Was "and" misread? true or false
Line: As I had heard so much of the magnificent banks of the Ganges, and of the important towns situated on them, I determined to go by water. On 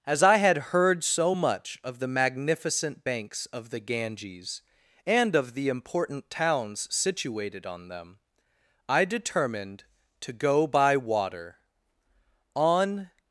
false